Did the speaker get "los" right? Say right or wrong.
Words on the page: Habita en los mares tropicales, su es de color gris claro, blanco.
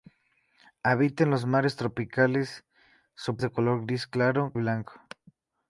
right